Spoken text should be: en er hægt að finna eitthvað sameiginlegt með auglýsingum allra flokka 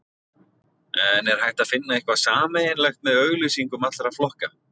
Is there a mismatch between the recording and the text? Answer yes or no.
no